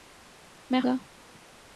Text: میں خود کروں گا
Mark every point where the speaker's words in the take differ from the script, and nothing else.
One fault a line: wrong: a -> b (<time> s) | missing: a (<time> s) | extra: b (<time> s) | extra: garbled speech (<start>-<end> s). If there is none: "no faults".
missing: خود کروں (0.8 s)